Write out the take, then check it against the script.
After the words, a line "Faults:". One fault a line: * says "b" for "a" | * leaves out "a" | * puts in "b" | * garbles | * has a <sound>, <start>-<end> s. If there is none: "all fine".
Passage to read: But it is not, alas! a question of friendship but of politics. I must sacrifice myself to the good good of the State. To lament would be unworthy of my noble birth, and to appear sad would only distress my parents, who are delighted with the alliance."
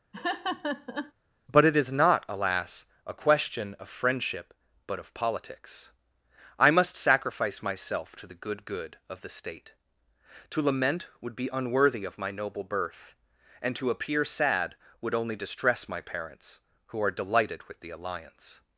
But it is not, alas! a question of friendship but of politics. I must sacrifice myself to the good good of the State. To lament would be unworthy of my noble birth, and to appear sad would only distress my parents, who are delighted with the alliance."
Faults:
* has a laugh, 0.1-1.1 s